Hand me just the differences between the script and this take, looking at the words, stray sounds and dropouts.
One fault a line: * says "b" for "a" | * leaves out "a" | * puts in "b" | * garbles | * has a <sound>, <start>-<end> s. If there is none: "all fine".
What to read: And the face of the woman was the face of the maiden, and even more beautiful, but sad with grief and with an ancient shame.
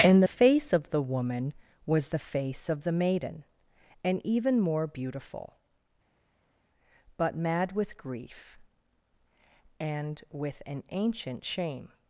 * says "mad" for "sad"